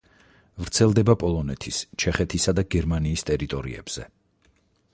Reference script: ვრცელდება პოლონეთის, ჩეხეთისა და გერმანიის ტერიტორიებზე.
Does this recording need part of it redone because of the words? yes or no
no